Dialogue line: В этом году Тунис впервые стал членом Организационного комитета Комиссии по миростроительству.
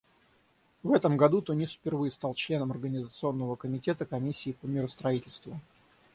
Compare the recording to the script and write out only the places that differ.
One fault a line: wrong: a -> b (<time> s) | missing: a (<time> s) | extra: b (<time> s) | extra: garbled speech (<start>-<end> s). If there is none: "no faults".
no faults